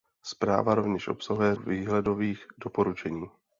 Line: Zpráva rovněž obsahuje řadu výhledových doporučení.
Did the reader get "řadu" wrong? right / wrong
wrong